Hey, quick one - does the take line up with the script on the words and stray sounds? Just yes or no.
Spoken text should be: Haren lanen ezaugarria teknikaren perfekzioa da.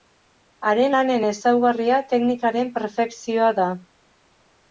yes